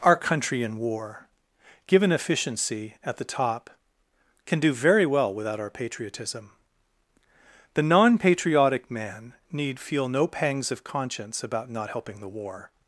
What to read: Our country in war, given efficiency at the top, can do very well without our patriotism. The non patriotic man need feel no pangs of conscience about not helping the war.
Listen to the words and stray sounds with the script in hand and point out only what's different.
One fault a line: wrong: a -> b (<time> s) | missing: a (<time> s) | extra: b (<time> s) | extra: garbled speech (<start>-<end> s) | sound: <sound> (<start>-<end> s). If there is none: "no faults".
no faults